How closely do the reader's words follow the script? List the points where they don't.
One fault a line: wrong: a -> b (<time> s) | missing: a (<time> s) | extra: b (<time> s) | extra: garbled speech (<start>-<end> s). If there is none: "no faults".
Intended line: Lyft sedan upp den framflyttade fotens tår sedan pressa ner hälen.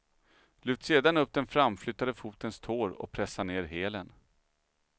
wrong: sedan -> och (2.9 s)